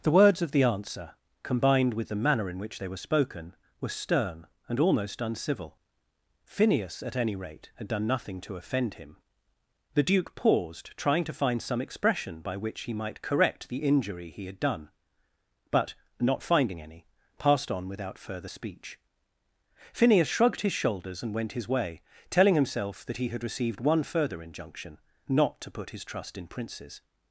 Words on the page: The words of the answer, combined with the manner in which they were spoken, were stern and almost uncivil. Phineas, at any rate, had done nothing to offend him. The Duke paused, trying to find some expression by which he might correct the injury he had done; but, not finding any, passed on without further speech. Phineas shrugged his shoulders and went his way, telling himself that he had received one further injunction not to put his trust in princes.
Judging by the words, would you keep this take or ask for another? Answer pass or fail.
pass